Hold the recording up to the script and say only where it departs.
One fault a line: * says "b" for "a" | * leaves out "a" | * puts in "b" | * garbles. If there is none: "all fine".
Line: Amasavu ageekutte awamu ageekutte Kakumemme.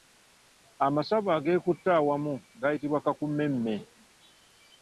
* says "gayitibwa" for "ageekutte"